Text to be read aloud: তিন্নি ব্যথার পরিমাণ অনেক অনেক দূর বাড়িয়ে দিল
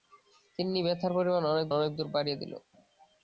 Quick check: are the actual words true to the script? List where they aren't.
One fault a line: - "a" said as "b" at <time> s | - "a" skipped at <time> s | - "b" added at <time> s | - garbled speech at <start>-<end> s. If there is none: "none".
none